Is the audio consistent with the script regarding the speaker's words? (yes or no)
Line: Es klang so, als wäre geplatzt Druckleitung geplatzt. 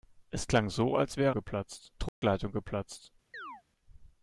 yes